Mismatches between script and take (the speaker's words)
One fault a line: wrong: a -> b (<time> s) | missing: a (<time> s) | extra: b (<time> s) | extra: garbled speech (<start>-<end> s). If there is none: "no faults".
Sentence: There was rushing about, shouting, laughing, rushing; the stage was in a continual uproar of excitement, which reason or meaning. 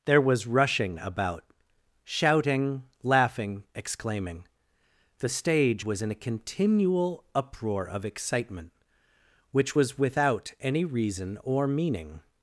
wrong: rushing -> exclaiming (3.8 s)
extra: was without any (9.8 s)